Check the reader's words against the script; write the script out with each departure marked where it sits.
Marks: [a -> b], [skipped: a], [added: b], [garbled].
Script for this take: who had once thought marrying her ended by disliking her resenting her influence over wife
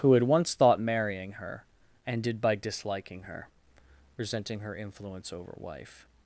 who had once thought marrying her ended by disliking her resenting her influence over wife